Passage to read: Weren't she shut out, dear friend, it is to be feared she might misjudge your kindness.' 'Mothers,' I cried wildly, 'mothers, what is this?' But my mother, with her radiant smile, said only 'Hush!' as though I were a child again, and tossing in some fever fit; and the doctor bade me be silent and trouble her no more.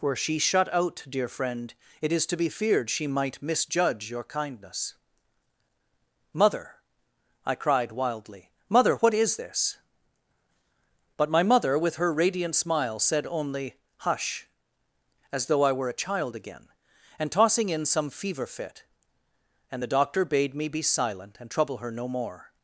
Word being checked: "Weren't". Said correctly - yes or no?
no